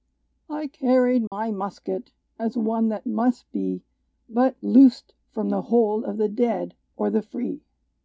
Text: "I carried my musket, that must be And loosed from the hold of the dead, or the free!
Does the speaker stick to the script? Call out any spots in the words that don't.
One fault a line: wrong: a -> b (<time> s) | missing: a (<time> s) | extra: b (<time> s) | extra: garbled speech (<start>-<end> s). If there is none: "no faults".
extra: as one (2.4 s)
wrong: And -> But (4.3 s)